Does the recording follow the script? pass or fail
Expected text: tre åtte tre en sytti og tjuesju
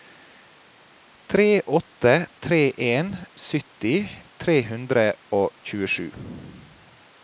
fail